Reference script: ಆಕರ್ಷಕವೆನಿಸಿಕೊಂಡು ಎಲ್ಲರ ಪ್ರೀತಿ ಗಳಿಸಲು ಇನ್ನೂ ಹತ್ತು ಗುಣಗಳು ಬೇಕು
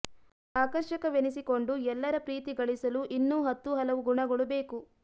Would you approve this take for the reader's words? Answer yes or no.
no